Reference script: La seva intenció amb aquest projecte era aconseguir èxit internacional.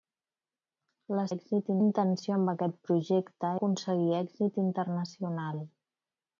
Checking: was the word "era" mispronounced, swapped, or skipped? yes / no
yes